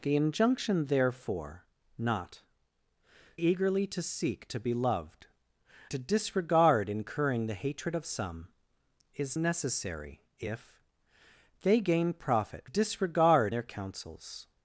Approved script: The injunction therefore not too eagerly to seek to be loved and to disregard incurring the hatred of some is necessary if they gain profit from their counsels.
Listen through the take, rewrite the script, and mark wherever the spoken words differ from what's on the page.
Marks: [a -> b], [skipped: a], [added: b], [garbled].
The injunction therefore not [skipped: too] eagerly to seek to be loved [skipped: and] to disregard incurring the hatred of some is necessary if they gain profit [from -> disregard] their counsels.